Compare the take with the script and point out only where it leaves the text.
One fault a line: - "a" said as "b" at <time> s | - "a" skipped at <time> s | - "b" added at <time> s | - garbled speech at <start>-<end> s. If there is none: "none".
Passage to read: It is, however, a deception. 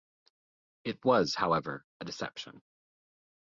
- "is" said as "was" at 1.1 s